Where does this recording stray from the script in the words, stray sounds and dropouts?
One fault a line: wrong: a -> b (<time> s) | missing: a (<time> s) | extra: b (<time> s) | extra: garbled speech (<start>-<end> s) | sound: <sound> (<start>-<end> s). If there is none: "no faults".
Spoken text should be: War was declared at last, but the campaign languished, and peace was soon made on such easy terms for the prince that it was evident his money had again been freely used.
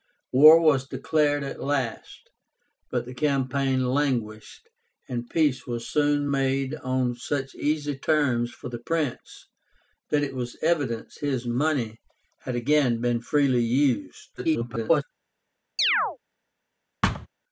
extra: garbled speech (14.4-15.0 s)
sound: chirp (15.8-16.2 s)
sound: thud (17.0-17.3 s)